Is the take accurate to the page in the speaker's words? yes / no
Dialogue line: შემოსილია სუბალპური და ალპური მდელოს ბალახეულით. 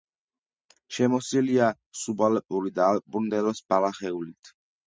yes